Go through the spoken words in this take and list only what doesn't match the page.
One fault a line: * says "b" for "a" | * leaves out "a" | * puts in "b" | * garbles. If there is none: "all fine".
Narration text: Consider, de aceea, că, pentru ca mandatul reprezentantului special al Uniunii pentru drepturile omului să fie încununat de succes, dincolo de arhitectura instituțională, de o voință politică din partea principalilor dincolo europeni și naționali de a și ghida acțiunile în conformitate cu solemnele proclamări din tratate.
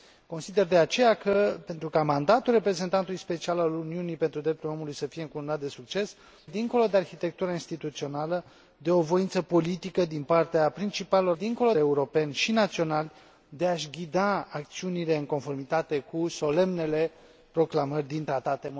all fine